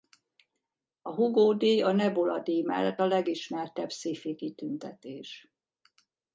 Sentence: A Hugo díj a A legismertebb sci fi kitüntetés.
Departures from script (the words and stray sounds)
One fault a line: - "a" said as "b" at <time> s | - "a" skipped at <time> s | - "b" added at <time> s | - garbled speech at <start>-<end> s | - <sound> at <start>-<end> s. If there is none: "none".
- "Nebula díj mellett" added at 1.9 s